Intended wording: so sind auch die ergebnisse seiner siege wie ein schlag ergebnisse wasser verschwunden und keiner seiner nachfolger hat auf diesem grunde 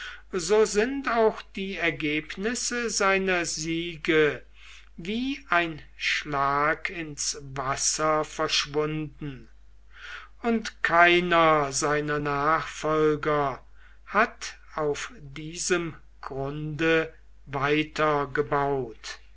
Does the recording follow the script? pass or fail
fail